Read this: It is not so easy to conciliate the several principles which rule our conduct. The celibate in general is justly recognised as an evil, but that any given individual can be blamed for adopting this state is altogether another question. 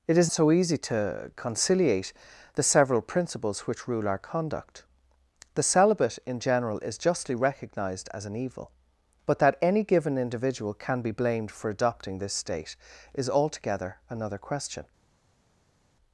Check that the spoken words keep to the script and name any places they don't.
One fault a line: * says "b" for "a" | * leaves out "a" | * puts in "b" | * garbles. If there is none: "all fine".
* leaves out "not"